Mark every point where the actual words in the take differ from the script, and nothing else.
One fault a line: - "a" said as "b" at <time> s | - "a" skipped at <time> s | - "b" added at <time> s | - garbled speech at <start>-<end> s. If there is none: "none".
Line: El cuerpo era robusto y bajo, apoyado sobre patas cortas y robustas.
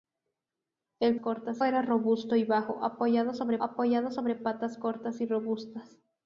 - "cuerpo" said as "cortas" at 1.2 s
- "apoyado sobre" added at 3.6 s